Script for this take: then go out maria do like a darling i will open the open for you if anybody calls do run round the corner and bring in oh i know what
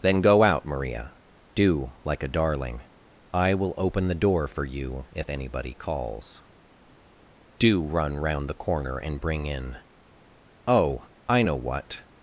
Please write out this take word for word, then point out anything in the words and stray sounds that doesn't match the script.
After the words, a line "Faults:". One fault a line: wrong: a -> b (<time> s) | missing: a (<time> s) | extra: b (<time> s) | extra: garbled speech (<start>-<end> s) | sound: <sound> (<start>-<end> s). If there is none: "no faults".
then go out maria do like a darling i will open the door for you if anybody calls do run round the corner and bring in oh i know what
Faults:
wrong: open -> door (4.2 s)